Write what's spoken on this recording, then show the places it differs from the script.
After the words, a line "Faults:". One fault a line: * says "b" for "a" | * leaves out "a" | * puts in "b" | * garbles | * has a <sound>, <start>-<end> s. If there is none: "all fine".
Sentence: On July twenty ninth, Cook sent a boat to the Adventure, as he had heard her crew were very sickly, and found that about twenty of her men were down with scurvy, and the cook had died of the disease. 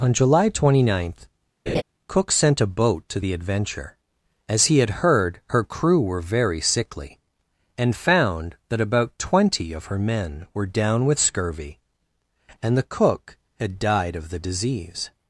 On July twenty ninth, Cook sent a boat to the Adventure, as he had heard her crew were very sickly, and found that about twenty of her men were down with scurvy, and the cook had died of the disease.
Faults:
* has a laugh, 1.7-1.8 s